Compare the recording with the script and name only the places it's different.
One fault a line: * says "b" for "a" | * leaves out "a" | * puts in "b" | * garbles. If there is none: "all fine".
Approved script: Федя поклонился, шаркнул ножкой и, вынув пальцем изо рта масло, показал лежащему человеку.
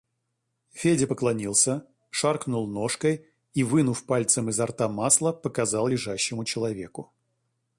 all fine